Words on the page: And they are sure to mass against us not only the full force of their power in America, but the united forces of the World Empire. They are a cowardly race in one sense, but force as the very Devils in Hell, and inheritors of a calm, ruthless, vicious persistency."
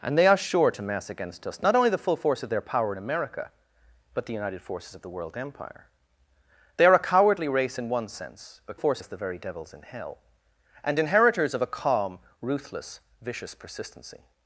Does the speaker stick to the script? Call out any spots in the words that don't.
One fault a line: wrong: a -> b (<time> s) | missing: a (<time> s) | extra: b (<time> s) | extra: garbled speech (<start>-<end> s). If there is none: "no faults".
no faults